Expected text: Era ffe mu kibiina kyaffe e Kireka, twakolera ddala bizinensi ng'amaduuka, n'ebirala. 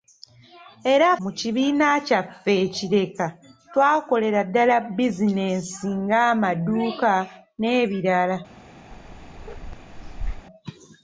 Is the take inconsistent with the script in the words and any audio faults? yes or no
yes